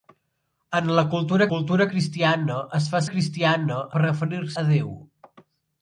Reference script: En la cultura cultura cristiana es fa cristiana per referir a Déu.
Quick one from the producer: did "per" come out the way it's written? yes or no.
yes